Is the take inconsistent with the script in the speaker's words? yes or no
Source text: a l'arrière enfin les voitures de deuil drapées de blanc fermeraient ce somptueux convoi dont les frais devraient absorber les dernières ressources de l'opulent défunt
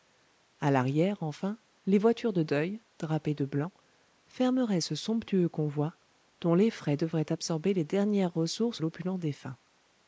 yes